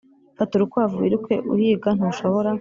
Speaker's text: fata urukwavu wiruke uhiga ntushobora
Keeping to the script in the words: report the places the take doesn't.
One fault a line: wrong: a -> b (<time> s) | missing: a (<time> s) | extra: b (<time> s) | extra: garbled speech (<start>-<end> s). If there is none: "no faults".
no faults